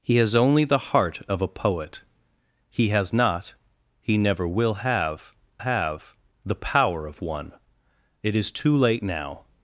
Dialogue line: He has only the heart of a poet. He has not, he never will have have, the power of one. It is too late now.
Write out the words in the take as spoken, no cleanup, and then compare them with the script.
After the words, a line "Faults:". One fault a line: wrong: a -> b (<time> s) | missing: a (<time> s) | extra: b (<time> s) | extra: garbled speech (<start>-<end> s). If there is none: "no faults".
He has only the heart of a poet. He has not, he never will have have, the power of one. It is too late now.
Faults:
no faults